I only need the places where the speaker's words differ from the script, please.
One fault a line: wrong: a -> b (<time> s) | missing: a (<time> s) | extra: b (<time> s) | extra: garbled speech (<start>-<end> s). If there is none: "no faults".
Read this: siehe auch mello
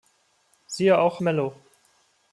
no faults